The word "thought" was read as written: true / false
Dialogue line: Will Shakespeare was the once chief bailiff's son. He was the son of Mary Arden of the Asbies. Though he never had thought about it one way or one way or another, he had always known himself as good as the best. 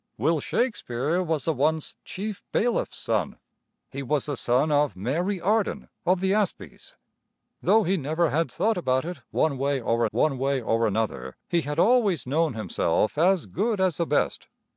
true